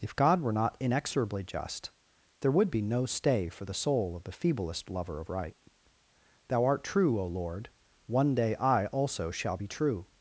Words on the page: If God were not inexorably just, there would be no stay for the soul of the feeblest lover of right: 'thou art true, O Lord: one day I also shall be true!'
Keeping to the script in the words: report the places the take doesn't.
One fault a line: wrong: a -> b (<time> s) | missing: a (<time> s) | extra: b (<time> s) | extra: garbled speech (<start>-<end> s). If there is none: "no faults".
no faults